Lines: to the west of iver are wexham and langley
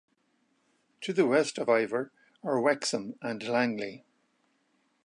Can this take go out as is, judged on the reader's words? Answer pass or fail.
pass